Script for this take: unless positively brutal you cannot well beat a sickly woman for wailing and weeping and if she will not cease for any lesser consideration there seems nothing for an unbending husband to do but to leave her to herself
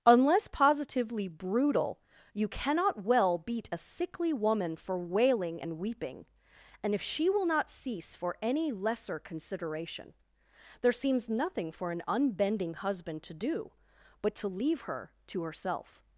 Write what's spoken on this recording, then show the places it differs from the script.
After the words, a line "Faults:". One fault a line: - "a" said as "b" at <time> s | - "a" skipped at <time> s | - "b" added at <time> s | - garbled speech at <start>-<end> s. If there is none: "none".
unless positively brutal you cannot well beat a sickly woman for wailing and weeping and if she will not cease for any lesser consideration there seems nothing for an unbending husband to do but to leave her to herself
Faults:
none